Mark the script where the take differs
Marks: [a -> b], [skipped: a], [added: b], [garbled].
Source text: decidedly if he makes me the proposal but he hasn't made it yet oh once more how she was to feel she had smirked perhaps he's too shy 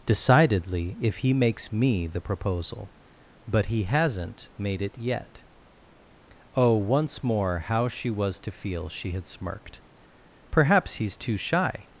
decidedly if he makes me the proposal but he hasn't made it yet oh once more how she was to feel she had smirked perhaps he's too shy